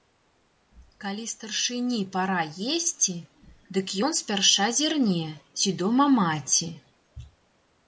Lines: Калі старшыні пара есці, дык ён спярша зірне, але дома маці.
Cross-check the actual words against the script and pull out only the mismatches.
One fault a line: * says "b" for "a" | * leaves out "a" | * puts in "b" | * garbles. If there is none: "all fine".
* says "ці" for "але"